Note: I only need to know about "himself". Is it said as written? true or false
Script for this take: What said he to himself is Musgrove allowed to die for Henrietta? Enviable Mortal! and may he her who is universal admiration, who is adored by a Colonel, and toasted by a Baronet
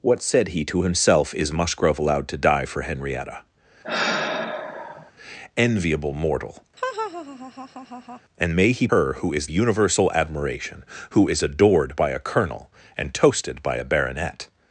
true